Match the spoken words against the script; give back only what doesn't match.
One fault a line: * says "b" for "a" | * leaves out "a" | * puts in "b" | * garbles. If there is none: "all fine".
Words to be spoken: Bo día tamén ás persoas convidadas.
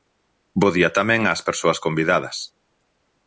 all fine